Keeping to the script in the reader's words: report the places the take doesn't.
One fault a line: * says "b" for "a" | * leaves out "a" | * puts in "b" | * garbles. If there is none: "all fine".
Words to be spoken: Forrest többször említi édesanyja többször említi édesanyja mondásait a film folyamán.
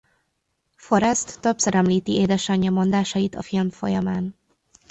* leaves out "többször említi édesanyja"